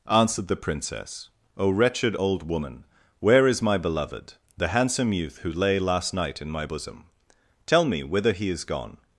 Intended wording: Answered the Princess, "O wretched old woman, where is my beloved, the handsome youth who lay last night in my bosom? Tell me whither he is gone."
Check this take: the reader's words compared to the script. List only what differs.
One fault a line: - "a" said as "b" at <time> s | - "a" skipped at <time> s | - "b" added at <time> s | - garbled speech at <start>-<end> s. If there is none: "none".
none